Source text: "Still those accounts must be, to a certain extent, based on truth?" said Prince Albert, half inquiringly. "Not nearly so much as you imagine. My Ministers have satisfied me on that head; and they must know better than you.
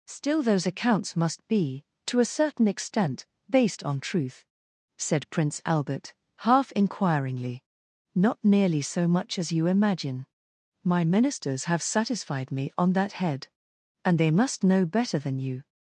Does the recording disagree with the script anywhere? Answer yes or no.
no